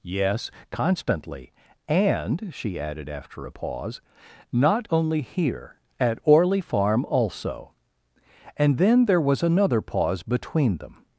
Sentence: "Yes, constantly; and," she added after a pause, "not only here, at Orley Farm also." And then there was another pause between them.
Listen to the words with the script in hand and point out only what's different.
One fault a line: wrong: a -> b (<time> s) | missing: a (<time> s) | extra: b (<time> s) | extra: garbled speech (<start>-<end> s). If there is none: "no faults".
no faults